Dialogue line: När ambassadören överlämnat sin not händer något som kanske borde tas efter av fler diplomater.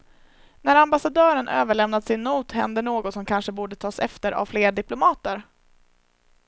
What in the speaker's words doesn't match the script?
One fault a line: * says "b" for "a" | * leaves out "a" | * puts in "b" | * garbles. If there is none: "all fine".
all fine